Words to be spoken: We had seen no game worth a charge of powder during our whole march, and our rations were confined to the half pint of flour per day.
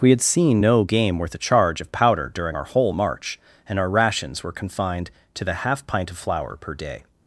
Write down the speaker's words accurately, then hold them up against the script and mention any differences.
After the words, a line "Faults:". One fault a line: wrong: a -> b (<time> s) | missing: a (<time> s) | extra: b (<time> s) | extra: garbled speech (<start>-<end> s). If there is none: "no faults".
We had seen no game worth a charge of powder during our whole march, and our rations were confined to the half pint of flour per day.
Faults:
no faults